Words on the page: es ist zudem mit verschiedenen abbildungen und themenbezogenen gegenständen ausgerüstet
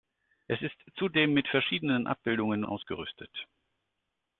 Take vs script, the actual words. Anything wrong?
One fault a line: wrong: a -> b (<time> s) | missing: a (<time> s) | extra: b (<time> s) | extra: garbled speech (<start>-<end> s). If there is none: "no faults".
missing: und themenbezogenen gegenständen (2.6 s)